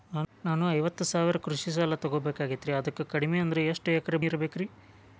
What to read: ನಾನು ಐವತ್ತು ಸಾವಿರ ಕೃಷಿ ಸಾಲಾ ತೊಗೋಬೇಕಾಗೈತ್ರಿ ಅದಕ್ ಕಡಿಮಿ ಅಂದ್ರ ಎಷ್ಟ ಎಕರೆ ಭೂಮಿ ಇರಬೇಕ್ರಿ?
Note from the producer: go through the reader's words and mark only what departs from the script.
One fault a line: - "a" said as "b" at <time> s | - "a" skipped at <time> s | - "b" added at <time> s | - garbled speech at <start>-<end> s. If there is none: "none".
- "ಭೂಮಿ" skipped at 4.2 s